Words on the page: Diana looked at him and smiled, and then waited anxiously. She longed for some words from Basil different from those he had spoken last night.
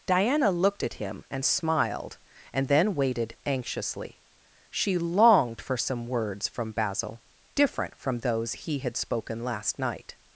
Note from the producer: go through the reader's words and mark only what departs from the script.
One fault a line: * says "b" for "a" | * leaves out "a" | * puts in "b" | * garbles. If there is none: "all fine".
all fine